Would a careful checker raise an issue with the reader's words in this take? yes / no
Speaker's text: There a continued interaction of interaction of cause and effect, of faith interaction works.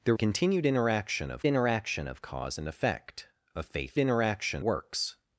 no